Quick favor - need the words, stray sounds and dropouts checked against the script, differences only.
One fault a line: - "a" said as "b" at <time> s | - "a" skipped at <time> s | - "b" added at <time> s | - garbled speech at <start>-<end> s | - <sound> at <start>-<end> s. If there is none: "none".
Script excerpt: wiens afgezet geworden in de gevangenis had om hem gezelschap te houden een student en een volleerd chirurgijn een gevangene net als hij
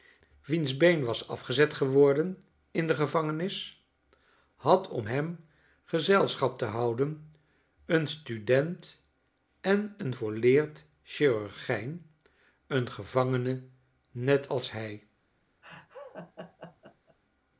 - "been was" added at 0.8 s
- laugh at 15.6-17.2 s